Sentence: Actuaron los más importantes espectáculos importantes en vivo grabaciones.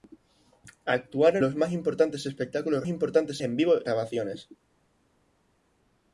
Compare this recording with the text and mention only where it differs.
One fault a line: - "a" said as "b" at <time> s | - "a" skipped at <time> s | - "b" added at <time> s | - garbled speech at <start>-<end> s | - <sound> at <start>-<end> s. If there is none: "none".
none